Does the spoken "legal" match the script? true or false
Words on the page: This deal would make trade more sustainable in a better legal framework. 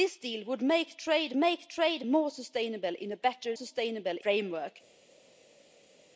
false